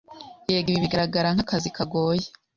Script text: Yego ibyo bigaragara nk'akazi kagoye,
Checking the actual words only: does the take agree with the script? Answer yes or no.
no